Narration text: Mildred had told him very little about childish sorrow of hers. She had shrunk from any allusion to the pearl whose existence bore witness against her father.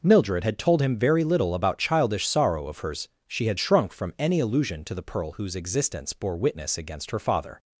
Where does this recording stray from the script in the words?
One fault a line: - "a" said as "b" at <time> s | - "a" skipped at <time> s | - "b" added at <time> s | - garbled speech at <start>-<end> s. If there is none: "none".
none